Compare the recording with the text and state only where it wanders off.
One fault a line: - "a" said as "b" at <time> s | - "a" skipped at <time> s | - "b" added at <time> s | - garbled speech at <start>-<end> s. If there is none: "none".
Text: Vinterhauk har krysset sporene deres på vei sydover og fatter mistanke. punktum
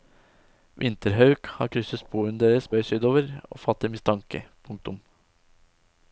- "på" skipped at 2.7 s